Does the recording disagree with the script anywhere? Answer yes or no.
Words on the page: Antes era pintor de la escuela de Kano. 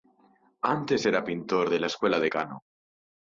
no